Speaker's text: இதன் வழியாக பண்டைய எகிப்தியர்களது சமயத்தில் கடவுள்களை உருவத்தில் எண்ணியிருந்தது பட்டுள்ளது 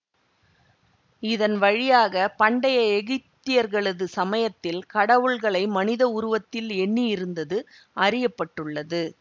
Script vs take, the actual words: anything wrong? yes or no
yes